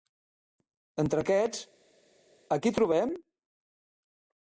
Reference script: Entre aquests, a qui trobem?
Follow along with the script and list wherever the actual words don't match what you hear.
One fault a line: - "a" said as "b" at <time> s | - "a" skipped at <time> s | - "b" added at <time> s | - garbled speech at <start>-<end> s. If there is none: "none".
none